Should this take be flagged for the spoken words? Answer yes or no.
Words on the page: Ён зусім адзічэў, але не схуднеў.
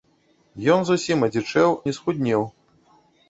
yes